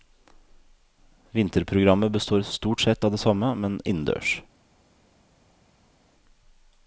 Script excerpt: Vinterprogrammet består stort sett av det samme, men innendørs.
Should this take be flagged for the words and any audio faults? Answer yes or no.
no